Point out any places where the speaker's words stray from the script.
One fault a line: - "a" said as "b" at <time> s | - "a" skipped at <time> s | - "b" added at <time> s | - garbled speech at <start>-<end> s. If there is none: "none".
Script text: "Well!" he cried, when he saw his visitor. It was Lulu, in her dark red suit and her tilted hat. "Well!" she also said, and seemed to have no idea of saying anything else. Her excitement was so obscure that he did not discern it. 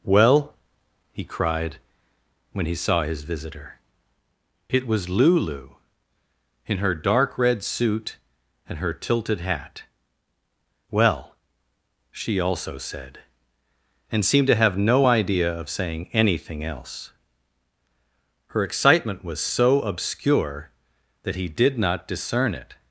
none